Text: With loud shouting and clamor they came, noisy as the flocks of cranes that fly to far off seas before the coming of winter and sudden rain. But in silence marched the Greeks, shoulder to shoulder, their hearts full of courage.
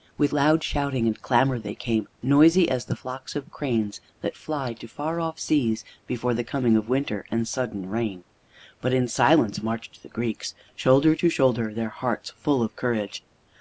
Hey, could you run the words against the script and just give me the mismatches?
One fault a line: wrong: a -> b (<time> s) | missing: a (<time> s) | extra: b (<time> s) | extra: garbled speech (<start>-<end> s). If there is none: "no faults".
no faults